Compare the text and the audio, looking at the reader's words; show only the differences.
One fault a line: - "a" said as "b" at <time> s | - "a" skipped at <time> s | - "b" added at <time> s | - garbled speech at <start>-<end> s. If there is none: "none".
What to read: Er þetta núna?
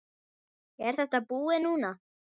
- "búið" added at 1.3 s